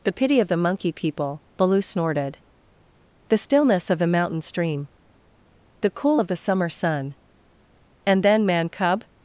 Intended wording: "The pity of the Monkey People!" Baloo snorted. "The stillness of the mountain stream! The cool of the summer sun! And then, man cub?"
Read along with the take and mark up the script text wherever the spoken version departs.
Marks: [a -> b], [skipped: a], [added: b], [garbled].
"The pity of the Monkey People!" Baloo snorted. "The stillness of the mountain stream! The cool of the summer sun! And then, man cub?"